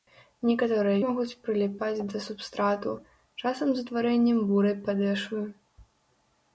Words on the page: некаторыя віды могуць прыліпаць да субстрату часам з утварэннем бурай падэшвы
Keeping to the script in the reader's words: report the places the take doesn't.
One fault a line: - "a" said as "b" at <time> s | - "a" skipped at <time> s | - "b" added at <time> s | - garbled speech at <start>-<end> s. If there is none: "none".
- "віды" skipped at 1.0 s